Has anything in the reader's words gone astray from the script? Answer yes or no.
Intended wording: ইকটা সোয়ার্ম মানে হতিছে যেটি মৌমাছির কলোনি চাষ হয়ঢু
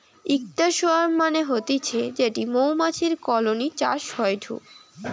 no